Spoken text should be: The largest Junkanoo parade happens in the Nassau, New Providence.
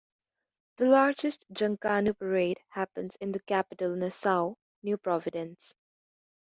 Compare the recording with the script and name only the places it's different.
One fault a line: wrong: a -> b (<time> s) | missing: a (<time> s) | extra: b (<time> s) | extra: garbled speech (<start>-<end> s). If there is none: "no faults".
extra: capital (3.4 s)